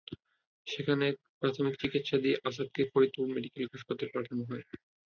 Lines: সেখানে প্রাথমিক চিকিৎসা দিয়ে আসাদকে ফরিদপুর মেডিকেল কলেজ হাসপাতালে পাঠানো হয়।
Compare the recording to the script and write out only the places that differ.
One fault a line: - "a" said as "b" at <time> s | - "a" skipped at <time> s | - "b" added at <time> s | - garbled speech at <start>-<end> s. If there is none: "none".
- "কলেজ" skipped at 3.6 s